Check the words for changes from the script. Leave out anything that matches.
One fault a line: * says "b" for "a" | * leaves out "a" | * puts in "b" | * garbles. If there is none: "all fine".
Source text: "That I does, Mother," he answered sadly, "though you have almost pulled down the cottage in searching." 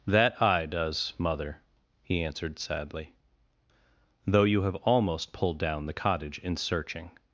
all fine